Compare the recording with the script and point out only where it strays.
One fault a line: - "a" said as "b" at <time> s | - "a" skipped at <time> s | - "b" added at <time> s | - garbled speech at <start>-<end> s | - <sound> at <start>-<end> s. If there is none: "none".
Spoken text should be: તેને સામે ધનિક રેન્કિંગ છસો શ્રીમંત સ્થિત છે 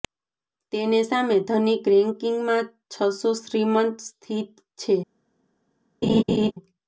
- "માં" added at 2.5 s
- laugh at 6.0-6.5 s